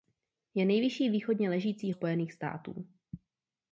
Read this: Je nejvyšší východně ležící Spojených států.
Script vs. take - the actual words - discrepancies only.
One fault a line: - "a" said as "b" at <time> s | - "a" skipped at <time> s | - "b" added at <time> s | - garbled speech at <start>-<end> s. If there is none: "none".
none